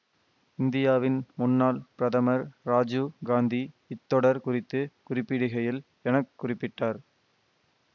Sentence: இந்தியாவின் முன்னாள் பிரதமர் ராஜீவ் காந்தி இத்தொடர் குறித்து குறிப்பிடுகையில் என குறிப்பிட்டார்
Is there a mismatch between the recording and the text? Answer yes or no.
no